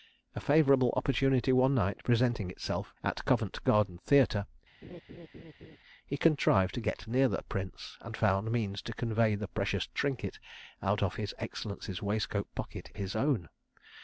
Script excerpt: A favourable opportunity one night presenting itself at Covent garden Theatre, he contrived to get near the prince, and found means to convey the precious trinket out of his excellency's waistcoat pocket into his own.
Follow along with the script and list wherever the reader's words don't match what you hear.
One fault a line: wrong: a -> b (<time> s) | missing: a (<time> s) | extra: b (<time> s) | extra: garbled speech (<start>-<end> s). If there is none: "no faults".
missing: into (12.9 s)